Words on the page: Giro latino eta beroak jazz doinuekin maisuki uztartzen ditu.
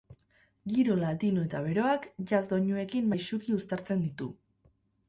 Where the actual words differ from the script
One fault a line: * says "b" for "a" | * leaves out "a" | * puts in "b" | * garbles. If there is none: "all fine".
all fine